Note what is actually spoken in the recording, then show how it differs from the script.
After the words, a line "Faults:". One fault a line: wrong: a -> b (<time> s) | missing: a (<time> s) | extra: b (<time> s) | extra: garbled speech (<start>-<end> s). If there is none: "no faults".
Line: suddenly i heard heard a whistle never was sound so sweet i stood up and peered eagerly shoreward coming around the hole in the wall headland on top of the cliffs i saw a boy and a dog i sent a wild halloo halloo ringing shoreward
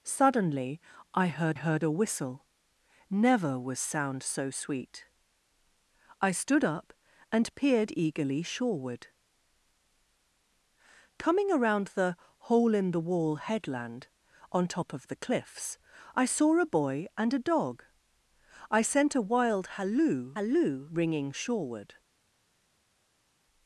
suddenly i heard heard a whistle never was sound so sweet i stood up and peered eagerly shoreward coming around the hole in the wall headland on top of the cliffs i saw a boy and a dog i sent a wild halloo halloo ringing shoreward
Faults:
no faults